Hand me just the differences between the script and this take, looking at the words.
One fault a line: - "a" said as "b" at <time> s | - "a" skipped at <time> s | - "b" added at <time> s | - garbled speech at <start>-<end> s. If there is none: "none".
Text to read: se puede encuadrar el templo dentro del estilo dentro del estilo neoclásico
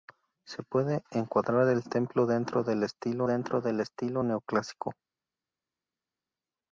none